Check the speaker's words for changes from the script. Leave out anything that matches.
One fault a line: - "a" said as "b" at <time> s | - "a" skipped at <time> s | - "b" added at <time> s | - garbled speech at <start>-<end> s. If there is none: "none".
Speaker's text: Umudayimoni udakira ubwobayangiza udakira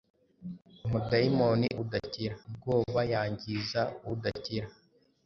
none